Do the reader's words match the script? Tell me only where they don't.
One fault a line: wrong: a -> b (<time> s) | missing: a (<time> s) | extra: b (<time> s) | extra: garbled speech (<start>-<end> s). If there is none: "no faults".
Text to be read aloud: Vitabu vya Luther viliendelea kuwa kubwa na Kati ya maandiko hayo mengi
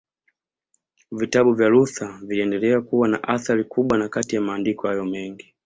extra: na athari (3.1 s)